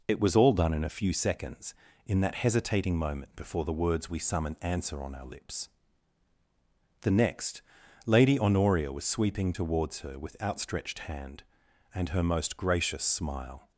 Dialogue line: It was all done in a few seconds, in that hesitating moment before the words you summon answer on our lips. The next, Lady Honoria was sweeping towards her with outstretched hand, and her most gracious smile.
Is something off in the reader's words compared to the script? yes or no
yes